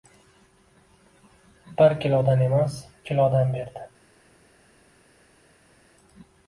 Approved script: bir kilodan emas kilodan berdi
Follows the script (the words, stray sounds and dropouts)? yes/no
yes